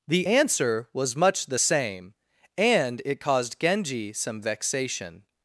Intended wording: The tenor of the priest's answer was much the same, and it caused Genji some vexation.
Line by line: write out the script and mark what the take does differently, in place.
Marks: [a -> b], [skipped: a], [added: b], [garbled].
The [skipped: tenor of the priest's] answer was much the same, and it caused Genji some vexation.